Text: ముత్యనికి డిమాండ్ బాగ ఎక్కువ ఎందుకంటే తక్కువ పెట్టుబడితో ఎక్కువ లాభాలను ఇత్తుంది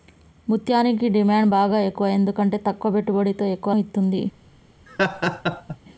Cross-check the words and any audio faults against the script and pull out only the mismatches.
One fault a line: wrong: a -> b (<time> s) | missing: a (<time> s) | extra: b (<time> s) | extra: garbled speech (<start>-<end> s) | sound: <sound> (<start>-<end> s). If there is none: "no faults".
missing: లాభాలను (3.7 s)
sound: laugh (4.9-5.8 s)